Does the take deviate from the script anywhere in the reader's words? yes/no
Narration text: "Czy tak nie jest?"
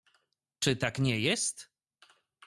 no